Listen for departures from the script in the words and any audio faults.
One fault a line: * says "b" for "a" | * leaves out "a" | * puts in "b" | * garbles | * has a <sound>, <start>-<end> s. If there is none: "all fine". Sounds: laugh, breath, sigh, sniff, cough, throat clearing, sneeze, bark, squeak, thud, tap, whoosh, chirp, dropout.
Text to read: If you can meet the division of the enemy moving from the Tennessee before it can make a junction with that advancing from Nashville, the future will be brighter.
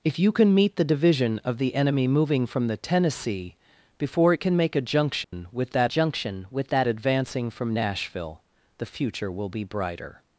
* has a dropout, 5.2-5.3 s
* puts in "junction with that"